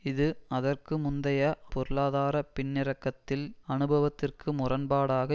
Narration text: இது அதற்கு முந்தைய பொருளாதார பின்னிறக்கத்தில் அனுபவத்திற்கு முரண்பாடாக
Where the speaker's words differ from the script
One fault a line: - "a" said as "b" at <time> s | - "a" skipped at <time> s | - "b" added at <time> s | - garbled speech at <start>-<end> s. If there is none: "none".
none